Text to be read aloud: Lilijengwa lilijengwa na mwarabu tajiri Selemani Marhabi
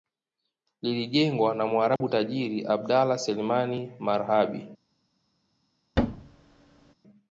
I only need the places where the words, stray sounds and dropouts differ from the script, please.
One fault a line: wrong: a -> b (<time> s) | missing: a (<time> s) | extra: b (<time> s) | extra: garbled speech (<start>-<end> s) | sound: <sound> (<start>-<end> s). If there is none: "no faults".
missing: lilijengwa (1.6 s)
sound: dropout (2.0-2.0 s)
extra: Abdallah (2.7 s)
sound: thud (6.0-6.9 s)